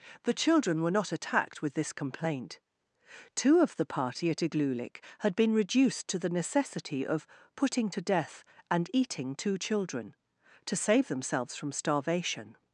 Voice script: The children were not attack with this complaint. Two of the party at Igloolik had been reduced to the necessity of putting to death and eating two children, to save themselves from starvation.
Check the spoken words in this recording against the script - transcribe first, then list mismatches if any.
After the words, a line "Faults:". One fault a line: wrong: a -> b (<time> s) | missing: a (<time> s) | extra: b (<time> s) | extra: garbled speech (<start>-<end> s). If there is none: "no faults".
The children were not attacked with this complaint. Two of the party at Igloolik had been reduced to the necessity of putting to death and eating two children, to save themselves from starvation.
Faults:
wrong: attack -> attacked (1.1 s)